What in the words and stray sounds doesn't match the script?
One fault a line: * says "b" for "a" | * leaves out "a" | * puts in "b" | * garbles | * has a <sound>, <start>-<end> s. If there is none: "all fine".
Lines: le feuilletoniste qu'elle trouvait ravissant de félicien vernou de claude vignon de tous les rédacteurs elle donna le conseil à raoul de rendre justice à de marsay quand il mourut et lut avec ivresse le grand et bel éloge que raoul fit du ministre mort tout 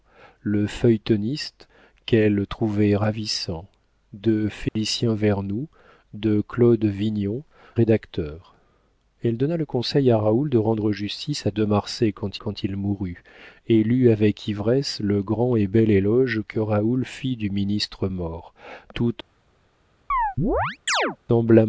* has a dropout, 4.7-4.8 s
* leaves out "de tous les"
* puts in "quand"
* has a chirp, 20.1-21.2 s